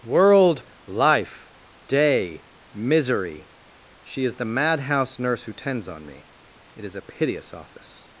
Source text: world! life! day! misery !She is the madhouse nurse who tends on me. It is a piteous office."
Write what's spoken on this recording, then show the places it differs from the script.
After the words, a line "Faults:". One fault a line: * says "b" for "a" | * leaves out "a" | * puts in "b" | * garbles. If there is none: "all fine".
world! life! day! misery !She is the madhouse nurse who tends on me. It is a piteous office."
Faults:
all fine